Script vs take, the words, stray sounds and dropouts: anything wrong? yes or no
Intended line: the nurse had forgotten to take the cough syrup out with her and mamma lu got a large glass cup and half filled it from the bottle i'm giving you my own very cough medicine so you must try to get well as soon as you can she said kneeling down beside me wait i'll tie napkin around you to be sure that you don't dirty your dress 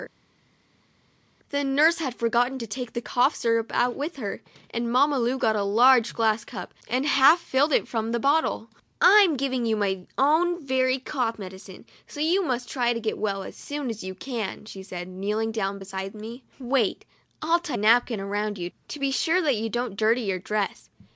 no